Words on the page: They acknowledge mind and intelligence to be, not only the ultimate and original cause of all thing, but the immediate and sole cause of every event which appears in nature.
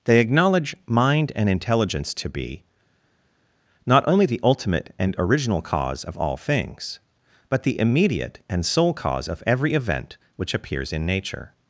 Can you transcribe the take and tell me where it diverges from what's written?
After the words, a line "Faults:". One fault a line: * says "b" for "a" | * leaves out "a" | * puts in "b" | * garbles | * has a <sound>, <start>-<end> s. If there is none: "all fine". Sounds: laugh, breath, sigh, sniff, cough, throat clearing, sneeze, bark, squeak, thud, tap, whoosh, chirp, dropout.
They acknowledge mind and intelligence to be, not only the ultimate and original cause of all things, but the immediate and sole cause of every event which appears in nature.
Faults:
* says "things" for "thing"